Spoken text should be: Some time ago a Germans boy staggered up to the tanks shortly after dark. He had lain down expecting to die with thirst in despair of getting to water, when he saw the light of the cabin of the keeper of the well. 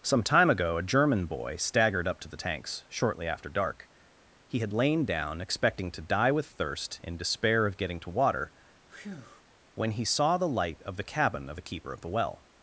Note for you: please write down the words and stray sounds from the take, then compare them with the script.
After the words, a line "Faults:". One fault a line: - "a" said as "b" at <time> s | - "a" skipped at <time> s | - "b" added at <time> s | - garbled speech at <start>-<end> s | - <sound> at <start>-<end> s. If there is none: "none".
Some time ago a German boy staggered up to the tanks shortly after dark. He had lain down expecting to die with thirst in despair of getting to water, when he saw the light of the cabin of the keeper of the well.
Faults:
- "Germans" said as "German" at 0.8 s
- breath at 8.9-9.4 s